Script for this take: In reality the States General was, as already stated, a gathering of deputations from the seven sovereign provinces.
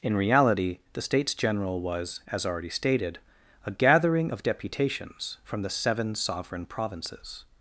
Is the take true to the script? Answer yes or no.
yes